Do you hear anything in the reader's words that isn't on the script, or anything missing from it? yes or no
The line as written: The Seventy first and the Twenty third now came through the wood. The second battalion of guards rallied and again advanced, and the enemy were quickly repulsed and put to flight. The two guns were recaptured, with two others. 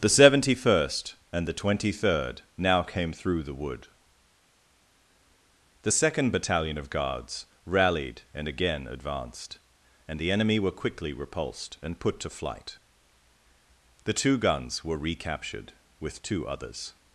no